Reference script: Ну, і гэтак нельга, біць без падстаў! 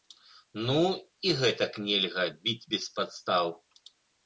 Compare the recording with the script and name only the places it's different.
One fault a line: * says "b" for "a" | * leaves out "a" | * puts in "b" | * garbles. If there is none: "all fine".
all fine